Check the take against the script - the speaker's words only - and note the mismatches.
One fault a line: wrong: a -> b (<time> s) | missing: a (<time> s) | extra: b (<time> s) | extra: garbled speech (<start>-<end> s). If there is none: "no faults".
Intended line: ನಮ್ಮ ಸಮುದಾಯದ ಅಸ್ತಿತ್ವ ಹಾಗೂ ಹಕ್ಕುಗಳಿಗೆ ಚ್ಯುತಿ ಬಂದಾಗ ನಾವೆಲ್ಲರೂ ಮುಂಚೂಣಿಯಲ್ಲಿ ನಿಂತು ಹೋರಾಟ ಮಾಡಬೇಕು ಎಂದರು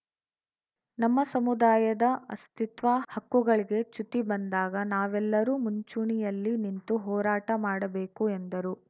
missing: ಹಾಗೂ (2.9 s)